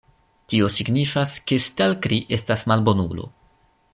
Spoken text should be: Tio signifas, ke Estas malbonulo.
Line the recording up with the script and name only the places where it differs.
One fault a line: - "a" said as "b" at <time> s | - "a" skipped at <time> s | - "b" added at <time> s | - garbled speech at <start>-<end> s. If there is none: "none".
- "Stelkri" added at 1.7 s